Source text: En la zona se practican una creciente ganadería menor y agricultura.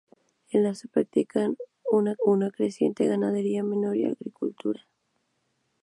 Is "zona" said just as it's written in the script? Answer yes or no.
no